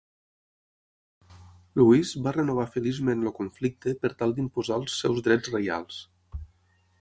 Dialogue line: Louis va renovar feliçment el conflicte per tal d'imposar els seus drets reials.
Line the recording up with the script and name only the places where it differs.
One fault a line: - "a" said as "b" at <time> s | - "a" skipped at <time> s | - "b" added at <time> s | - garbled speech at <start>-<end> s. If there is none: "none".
none